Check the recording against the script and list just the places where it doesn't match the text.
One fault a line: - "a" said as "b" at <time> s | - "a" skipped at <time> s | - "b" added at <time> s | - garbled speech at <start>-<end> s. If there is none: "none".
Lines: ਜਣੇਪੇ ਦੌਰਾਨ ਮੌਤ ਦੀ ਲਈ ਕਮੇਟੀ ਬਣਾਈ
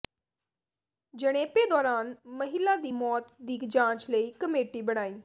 - "ਮਹਿਲਾ ਦੀ" added at 2.3 s
- "ਜਾਂਚ" added at 3.6 s